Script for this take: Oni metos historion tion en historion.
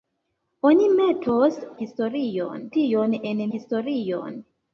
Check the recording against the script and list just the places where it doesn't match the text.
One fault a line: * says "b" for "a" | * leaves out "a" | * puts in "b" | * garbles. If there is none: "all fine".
all fine